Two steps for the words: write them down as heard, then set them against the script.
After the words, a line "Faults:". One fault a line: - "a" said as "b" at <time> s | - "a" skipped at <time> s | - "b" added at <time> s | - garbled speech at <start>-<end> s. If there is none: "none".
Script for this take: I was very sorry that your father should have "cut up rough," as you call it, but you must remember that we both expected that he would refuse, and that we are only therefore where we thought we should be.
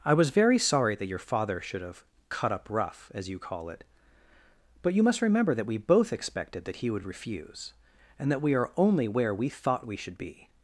I was very sorry that your father should have "cut up rough," as you call it, but you must remember that we both expected that he would refuse, and that we are only where we thought we should be.
Faults:
- "therefore" skipped at 9.1 s